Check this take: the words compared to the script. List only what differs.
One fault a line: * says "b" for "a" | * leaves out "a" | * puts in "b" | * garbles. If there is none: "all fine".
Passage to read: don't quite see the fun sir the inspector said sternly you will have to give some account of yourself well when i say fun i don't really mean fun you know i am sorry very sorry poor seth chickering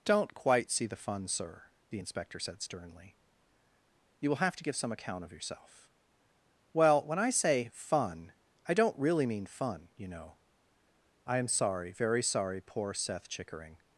all fine